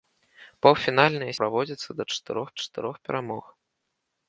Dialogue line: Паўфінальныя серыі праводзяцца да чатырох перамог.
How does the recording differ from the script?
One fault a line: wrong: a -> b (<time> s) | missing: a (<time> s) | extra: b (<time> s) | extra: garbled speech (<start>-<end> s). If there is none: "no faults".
missing: серыі (1.3 s)
extra: чатырох (2.6 s)